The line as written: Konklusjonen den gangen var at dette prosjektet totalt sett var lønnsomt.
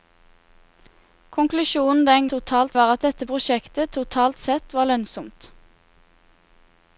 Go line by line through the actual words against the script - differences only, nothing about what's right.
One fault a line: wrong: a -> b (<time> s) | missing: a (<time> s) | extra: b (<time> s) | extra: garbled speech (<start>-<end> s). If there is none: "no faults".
wrong: gangen -> totalt (2.3 s)